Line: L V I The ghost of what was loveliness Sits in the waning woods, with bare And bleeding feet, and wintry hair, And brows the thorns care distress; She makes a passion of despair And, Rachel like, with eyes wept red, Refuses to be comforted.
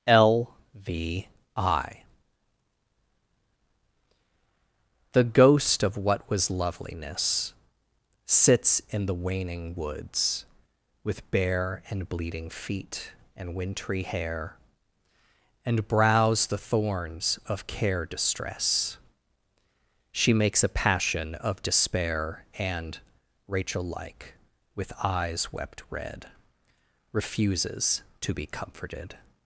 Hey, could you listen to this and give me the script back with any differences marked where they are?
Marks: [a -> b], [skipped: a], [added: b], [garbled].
L V I The ghost of what was loveliness Sits in the waning woods, with bare And bleeding feet, and wintry hair, And brows the thorns [added: of] care distress; She makes a passion of despair And, Rachel like, with eyes wept red, Refuses to be comforted.